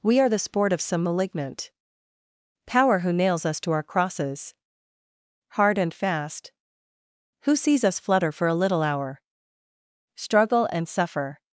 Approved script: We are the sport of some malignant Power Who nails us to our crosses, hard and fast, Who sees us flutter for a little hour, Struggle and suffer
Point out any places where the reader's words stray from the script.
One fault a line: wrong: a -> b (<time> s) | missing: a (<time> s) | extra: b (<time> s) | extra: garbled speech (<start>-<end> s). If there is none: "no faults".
no faults